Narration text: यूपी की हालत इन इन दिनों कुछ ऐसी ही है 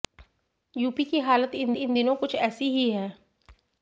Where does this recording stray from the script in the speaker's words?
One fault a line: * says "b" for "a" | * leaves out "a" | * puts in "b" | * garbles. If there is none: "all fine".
all fine